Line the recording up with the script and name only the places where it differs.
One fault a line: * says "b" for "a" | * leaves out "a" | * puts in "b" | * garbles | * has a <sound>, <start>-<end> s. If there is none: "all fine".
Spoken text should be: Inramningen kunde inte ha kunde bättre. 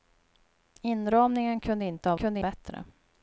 all fine